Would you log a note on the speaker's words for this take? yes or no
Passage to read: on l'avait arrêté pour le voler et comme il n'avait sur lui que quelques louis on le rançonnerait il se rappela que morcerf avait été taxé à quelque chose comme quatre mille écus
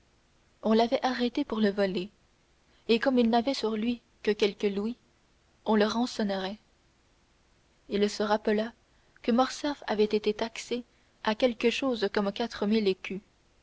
no